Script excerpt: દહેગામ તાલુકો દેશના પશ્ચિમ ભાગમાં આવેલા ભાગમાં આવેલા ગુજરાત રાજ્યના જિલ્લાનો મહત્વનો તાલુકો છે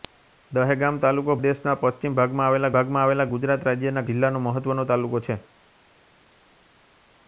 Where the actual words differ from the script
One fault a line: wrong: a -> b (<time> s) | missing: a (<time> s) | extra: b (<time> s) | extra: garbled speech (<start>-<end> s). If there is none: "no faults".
no faults